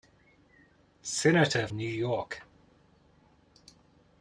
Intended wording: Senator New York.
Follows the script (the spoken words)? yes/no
yes